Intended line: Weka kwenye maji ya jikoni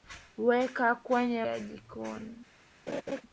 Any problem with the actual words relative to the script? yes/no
yes